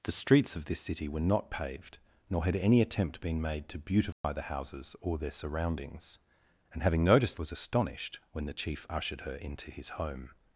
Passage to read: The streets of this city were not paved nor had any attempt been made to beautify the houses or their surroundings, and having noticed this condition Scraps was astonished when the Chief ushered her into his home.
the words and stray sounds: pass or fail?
fail